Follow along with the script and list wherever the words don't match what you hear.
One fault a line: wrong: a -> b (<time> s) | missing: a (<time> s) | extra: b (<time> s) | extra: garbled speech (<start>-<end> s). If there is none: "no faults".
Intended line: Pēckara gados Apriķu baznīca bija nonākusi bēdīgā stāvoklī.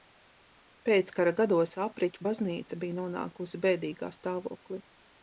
no faults